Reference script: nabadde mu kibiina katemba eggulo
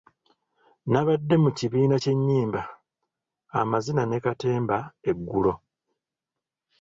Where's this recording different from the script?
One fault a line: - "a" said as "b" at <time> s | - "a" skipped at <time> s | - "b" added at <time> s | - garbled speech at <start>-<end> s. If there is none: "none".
- "ky'ennyimba amazina ne" added at 2.0 s